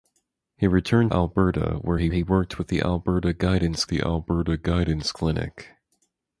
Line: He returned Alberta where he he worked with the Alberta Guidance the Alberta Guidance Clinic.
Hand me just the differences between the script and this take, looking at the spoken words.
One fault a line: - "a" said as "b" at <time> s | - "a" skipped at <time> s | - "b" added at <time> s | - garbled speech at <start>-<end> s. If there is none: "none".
none